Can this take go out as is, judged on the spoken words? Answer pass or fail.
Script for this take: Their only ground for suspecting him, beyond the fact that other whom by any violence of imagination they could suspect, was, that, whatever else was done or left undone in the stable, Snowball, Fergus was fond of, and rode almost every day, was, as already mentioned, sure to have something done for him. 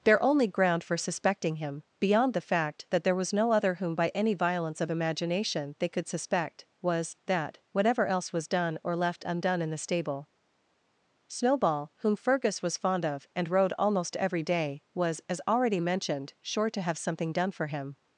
fail